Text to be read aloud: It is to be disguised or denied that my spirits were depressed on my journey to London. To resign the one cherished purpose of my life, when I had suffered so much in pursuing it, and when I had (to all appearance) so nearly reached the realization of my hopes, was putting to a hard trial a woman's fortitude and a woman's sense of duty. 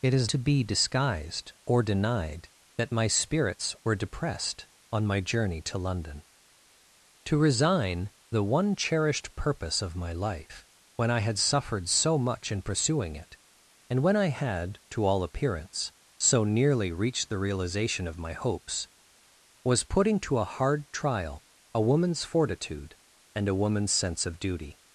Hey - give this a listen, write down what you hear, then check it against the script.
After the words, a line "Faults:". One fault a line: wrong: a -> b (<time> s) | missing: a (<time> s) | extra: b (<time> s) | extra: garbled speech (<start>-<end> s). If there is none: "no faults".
It is to be disguised or denied that my spirits were depressed on my journey to London. To resign the one cherished purpose of my life, when I had suffered so much in pursuing it, and when I had (to all appearance) so nearly reached the realization of my hopes, was putting to a hard trial a woman's fortitude and a woman's sense of duty.
Faults:
no faults